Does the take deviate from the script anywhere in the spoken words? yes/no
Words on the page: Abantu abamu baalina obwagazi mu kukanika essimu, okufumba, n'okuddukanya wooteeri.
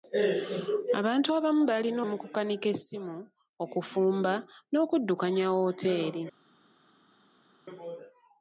yes